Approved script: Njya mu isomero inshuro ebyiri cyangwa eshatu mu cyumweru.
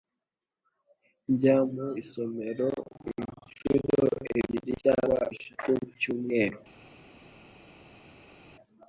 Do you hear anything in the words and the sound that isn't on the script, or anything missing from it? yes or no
no